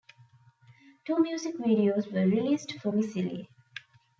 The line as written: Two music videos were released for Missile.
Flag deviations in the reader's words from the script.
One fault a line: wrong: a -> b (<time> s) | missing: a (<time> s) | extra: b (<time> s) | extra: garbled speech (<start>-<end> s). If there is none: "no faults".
no faults